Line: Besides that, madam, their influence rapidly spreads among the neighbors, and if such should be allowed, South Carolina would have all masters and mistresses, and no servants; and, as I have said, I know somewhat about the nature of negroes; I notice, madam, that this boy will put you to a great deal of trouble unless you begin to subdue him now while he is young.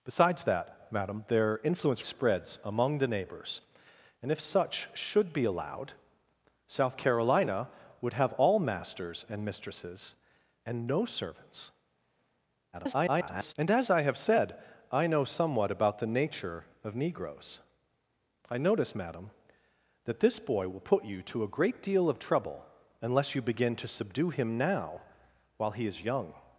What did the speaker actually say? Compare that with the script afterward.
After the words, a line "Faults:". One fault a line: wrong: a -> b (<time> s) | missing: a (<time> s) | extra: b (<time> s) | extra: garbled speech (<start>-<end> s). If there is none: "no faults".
Besides that, madam, their influence spreads among the neighbors, and if such should be allowed, South Carolina would have all masters and mistresses, and no servants; [garbled] and, as I have said, I know somewhat about the nature of negroes; I notice, madam, that this boy will put you to a great deal of trouble unless you begin to subdue him now while he is young.
Faults:
missing: rapidly (2.0 s)
extra: garbled speech (12.7-13.5 s)